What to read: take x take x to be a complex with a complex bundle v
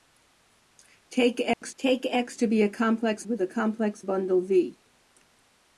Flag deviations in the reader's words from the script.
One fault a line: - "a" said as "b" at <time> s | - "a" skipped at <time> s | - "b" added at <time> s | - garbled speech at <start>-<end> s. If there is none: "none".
none